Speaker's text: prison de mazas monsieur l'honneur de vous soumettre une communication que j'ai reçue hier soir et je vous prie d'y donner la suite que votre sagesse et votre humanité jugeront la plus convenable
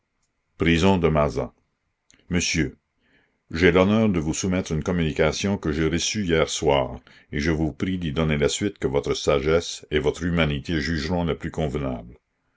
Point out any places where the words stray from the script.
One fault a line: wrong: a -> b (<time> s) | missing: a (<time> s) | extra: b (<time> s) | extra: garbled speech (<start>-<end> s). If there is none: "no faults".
extra: j'ai (3.5 s)